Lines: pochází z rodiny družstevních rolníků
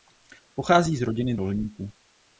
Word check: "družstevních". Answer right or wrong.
wrong